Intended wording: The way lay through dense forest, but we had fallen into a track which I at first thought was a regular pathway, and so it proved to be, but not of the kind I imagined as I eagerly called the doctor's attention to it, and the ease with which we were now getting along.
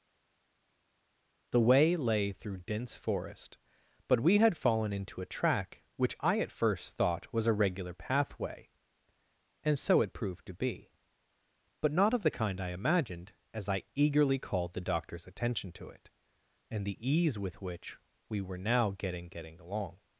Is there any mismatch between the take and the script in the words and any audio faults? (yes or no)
yes